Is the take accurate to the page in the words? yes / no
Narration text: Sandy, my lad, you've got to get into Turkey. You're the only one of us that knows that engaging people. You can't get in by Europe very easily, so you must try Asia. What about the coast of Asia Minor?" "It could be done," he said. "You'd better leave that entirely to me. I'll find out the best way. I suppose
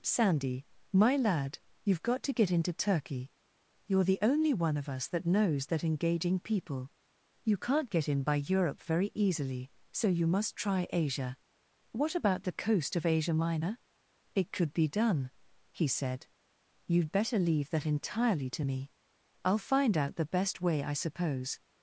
yes